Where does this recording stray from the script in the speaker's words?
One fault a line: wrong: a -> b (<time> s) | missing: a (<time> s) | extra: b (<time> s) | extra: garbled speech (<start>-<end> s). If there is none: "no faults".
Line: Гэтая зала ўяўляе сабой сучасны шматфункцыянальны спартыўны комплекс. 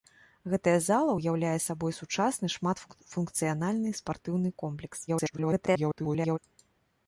extra: garbled speech (5.1-6.4 s)